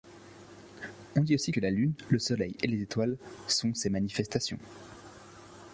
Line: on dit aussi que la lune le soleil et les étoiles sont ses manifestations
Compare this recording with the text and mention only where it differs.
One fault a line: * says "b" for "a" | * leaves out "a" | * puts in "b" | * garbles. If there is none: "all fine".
all fine